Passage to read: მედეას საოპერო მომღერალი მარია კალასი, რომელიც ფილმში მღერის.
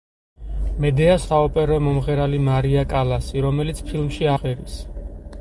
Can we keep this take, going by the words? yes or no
yes